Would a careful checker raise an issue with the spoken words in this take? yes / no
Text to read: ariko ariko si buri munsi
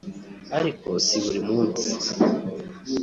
yes